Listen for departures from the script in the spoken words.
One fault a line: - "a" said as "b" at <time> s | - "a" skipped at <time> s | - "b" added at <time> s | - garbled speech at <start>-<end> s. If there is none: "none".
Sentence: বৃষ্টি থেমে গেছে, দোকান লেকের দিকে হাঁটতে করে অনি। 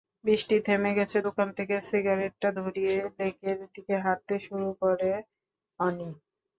- "থেকে সিগারেটটা ধরিয়ে" added at 1.6 s
- "শুরু" added at 4.5 s